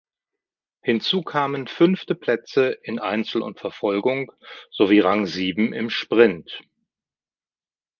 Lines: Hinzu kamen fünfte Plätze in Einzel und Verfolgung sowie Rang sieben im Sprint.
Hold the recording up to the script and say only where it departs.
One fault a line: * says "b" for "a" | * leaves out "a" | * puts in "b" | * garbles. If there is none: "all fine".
all fine